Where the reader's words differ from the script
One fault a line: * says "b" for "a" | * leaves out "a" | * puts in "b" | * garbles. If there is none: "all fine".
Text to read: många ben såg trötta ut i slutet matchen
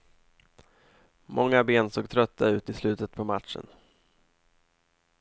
* puts in "på"